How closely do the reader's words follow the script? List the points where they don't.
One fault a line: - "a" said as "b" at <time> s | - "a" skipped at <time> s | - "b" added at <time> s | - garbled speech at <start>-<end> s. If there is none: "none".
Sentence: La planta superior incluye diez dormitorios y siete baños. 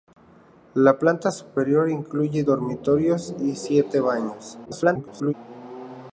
- "diez" skipped at 2.4 s
- garbled speech at 4.6-5.3 s